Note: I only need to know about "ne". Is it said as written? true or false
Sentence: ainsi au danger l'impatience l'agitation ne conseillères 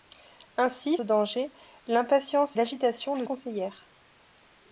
true